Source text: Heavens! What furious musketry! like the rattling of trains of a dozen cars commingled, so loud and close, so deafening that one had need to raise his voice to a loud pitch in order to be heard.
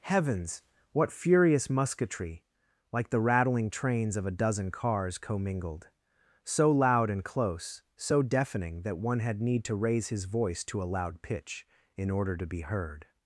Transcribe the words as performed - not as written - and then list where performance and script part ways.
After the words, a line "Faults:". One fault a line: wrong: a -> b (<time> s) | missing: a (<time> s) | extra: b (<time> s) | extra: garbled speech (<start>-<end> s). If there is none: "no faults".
Heavens! What furious musketry! like the rattling trains of a dozen cars commingled, so loud and close, so deafening that one had need to raise his voice to a loud pitch in order to be heard.
Faults:
missing: of (3.7 s)